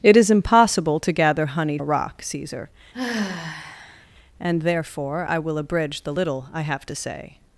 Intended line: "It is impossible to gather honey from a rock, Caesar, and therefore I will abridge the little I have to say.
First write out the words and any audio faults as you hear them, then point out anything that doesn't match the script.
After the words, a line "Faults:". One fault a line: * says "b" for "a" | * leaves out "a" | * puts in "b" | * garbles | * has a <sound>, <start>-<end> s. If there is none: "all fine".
"It is impossible to gather honey a rock, Caesar, and therefore I will abridge the little I have to say.
Faults:
* leaves out "from"
* has a sigh, 2.9-4.1 s